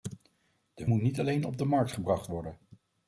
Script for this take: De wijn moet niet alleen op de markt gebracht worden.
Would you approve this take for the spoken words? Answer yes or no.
no